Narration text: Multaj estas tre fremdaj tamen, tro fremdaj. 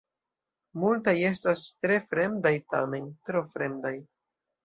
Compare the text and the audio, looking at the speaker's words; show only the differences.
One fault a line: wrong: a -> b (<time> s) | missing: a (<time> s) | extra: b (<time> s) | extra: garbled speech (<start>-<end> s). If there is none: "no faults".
no faults